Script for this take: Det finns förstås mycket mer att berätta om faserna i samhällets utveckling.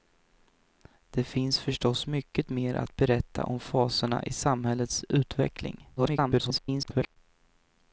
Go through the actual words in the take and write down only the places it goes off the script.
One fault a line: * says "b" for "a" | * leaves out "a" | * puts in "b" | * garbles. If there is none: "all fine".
* garbles